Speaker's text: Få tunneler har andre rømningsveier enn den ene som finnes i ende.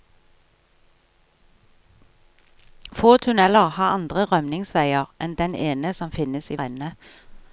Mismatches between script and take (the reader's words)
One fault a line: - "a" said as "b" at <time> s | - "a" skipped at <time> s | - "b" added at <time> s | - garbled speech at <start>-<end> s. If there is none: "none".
none